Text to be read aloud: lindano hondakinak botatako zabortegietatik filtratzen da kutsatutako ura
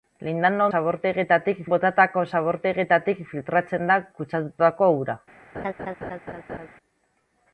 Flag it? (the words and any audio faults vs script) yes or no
yes